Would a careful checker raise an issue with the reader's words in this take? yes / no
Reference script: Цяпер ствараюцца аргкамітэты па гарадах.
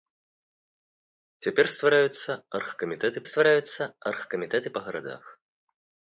yes